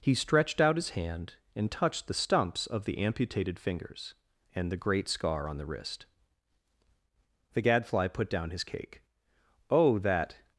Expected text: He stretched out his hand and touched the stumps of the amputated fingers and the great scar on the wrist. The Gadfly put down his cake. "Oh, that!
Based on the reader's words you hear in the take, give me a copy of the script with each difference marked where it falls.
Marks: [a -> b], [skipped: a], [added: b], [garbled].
He stretched out his hand and touched the stumps of the amputated fingers and the great scar on the wrist. The Gadfly put down his cake. "Oh, that!